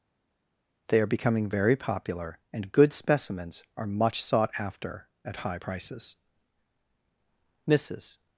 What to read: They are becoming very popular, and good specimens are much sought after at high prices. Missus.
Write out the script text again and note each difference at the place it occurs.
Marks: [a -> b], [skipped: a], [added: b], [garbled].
They are becoming very popular, and good specimens are much sought after at high prices. Missus.